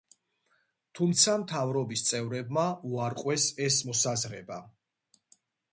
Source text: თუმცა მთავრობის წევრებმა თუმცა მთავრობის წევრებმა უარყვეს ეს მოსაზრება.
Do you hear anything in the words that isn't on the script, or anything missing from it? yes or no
yes